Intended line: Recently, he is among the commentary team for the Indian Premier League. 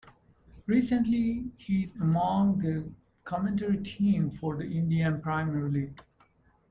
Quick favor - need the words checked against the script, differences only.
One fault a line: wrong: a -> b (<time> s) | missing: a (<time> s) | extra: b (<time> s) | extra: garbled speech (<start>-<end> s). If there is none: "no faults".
no faults